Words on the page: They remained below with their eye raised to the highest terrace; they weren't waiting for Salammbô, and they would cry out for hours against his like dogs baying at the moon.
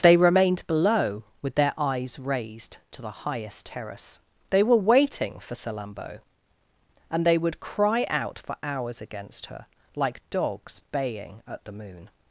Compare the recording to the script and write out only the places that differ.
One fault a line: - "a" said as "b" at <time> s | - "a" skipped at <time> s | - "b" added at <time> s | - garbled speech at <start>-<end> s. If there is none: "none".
- "eye" said as "eyes" at 1.8 s
- "weren't" said as "were" at 4.6 s
- "his" said as "her" at 9.5 s